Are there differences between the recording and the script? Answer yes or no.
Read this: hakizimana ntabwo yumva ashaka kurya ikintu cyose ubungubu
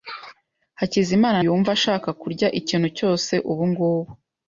yes